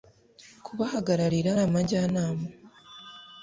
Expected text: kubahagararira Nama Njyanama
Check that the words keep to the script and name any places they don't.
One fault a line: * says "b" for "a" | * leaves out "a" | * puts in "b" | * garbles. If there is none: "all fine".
all fine